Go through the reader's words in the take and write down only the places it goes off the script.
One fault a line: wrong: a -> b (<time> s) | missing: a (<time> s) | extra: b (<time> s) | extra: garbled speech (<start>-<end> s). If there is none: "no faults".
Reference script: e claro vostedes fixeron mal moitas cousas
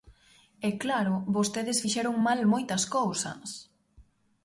no faults